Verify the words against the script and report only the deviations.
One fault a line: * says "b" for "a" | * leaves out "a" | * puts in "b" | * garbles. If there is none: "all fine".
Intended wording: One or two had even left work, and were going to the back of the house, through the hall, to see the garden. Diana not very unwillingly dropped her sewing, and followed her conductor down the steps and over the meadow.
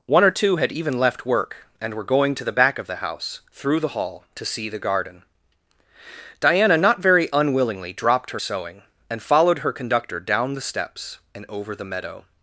all fine